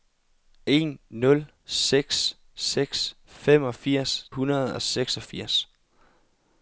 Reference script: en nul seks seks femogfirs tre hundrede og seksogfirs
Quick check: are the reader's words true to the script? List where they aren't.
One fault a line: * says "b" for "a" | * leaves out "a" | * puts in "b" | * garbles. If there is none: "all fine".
* leaves out "tre"